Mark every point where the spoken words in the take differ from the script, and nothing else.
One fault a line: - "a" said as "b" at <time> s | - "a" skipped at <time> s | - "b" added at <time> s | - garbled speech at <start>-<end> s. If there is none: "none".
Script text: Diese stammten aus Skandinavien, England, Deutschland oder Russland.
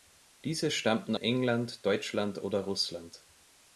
- "aus Skandinavien" skipped at 1.1 s